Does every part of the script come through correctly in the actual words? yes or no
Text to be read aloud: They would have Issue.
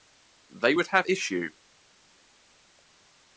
yes